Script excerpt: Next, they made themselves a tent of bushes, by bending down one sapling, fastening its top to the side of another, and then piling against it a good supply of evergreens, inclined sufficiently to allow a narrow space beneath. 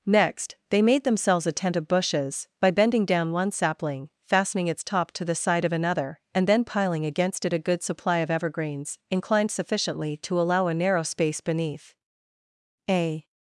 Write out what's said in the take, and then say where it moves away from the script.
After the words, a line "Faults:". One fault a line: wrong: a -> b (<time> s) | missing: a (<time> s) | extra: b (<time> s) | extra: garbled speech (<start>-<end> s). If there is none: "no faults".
Next, they made themselves a tent of bushes, by bending down one sapling, fastening its top to the side of another, and then piling against it a good supply of evergreens, inclined sufficiently to allow a narrow space beneath. A
Faults:
extra: A (12.9 s)